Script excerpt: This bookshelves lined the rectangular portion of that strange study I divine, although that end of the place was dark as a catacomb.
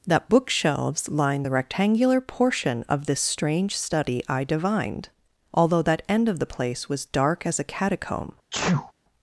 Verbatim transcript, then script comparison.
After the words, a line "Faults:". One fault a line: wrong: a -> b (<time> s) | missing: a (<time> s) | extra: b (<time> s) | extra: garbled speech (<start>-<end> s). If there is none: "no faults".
That bookshelves lined the rectangular portion of this strange study I divined, although that end of the place was dark as a catacomb.
Faults:
wrong: This -> That (0.1 s)
wrong: that -> this (3.0 s)
wrong: divine -> divined (4.4 s)